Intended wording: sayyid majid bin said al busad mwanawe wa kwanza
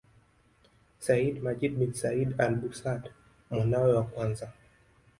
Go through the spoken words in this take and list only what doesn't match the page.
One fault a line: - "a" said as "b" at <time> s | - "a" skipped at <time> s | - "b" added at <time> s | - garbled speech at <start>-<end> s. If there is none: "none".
none